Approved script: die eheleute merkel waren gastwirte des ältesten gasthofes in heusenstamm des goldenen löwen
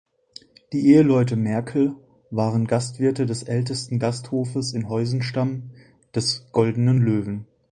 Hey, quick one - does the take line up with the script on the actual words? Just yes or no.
yes